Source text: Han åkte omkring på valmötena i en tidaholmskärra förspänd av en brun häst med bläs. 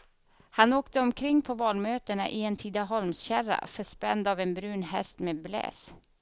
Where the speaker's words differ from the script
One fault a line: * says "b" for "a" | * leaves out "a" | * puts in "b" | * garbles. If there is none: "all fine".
all fine